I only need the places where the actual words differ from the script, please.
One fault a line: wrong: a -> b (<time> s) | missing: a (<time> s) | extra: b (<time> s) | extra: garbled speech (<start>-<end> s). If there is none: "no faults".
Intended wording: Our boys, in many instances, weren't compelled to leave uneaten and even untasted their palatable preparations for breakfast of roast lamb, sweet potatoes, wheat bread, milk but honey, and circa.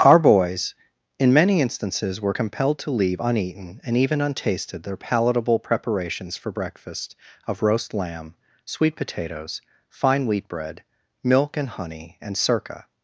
wrong: weren't -> were (2.2 s)
extra: fine (9.9 s)
wrong: but -> and (11.5 s)